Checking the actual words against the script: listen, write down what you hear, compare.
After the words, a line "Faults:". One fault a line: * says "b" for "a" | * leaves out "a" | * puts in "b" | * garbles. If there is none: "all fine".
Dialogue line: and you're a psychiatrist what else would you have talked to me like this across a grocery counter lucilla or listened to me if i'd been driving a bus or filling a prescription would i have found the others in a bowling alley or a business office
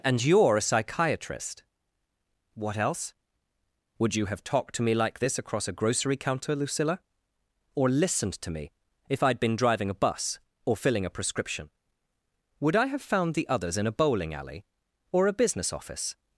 and you're a psychiatrist what else would you have talked to me like this across a grocery counter lucilla or listened to me if i'd been driving a bus or filling a prescription would i have found the others in a bowling alley or a business office
Faults:
all fine